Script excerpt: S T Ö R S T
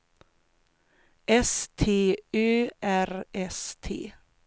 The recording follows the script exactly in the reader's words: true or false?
true